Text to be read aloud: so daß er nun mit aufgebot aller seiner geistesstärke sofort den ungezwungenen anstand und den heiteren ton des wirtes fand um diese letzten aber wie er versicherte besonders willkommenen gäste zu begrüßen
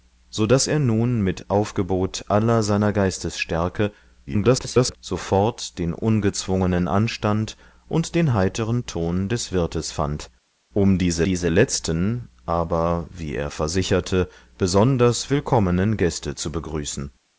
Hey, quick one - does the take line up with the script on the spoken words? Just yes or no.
no